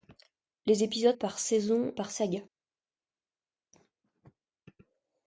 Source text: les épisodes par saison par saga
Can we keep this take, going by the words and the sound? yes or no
yes